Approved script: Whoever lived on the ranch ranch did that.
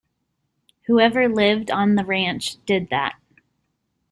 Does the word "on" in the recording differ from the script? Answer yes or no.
no